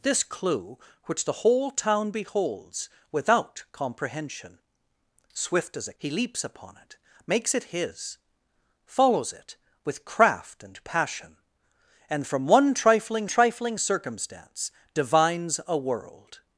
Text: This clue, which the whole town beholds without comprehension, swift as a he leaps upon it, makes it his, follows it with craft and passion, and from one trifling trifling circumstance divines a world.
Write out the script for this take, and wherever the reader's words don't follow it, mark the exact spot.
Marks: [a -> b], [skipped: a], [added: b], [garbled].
This clue, which the whole town beholds without comprehension, swift as a he leaps upon it, makes it his, follows it with craft and passion, and from one trifling trifling circumstance divines a world.